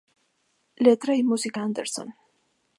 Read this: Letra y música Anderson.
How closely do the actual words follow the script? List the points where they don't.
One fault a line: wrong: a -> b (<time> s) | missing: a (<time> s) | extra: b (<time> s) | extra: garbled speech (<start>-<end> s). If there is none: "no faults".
no faults